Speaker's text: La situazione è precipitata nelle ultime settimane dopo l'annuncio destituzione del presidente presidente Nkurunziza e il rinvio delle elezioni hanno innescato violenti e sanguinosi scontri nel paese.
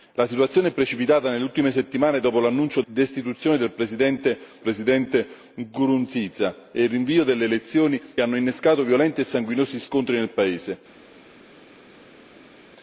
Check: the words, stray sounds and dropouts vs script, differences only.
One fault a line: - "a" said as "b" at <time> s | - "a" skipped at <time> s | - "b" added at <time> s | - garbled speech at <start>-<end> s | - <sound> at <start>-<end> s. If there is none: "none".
none